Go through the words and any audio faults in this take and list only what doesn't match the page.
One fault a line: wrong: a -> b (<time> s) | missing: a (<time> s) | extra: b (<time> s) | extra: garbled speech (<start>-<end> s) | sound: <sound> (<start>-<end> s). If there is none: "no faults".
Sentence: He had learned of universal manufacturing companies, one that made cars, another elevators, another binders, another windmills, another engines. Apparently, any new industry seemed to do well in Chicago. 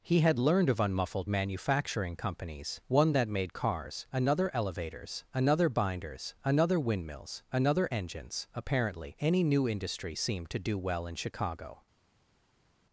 wrong: universal -> unmuffled (0.8 s)